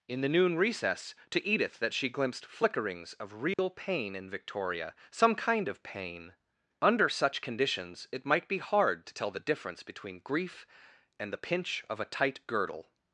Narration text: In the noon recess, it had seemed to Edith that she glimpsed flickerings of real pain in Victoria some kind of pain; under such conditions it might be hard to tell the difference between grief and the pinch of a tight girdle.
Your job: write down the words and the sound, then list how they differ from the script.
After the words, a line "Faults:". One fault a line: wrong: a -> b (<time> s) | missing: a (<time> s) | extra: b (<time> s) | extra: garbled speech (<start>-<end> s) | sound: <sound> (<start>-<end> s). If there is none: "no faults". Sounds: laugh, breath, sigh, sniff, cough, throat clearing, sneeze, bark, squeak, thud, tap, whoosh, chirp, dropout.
In the noon recess, to Edith that she glimpsed flickerings of real pain in Victoria some kind of pain; under such conditions it might be hard to tell the difference between grief and the pinch of a tight girdle.
Faults:
missing: it had seemed (1.1 s)
sound: dropout (3.5-3.6 s)